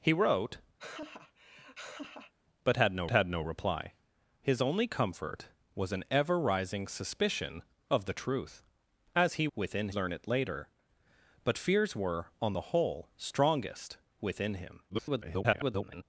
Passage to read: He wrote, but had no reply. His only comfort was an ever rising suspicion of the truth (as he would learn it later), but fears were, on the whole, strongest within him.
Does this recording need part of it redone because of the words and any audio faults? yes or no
yes